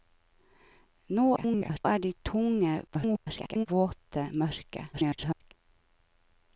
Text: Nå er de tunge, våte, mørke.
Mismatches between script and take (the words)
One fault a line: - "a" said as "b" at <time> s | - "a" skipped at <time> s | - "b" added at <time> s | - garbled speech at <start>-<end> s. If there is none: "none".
- garbled speech at 1.4-1.9 s
- garbled speech at 2.9-3.7 s
- garbled speech at 4.9-5.5 s